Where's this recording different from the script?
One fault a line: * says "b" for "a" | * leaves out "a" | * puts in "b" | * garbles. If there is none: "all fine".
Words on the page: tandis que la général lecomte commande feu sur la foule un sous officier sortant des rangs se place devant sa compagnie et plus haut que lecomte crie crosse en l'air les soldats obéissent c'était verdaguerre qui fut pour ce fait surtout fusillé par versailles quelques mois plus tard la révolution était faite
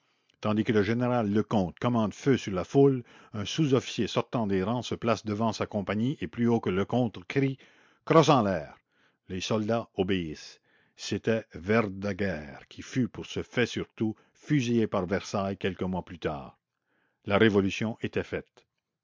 * says "le" for "la"